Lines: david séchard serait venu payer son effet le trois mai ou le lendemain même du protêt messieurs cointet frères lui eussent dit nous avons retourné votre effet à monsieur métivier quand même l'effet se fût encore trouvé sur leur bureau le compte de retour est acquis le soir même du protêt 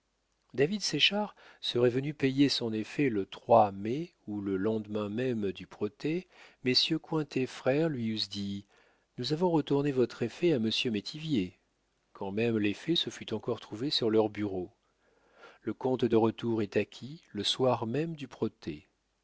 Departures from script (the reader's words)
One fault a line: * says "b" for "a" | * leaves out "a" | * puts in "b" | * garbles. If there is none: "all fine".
all fine